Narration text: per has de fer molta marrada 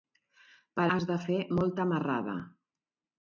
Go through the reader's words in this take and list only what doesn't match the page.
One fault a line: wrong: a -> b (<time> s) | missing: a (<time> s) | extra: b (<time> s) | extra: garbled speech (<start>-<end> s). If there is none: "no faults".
no faults